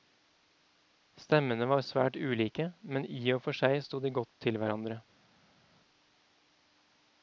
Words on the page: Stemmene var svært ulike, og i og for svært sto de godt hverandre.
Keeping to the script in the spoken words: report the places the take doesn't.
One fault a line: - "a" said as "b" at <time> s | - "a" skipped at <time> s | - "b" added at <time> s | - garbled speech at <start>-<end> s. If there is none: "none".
- "og" said as "men" at 2.8 s
- "svært" said as "seg" at 3.6 s
- "til" added at 4.4 s